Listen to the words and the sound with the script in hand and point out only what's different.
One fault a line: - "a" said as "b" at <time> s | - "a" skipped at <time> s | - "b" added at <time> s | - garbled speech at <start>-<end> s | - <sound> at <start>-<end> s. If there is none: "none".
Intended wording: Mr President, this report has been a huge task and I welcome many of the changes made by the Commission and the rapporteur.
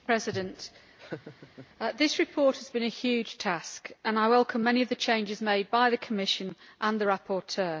- laugh at 1.0-1.7 s